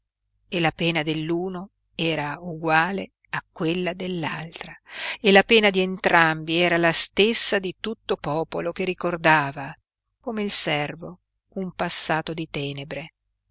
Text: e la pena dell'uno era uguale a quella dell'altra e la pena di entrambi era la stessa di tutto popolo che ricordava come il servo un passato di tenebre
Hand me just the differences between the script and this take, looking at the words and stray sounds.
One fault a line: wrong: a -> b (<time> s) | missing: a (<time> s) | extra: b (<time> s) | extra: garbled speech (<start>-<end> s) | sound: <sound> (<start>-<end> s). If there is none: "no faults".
no faults